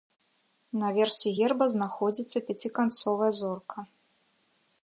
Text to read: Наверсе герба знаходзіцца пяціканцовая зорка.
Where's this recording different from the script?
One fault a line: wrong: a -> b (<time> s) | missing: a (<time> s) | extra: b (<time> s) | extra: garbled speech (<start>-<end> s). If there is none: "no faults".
no faults